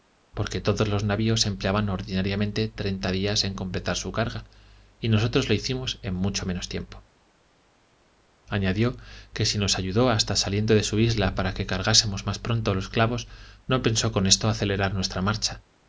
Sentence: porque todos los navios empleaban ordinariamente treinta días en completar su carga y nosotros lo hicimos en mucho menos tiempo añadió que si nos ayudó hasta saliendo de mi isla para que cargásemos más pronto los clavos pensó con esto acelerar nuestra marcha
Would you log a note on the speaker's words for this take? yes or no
yes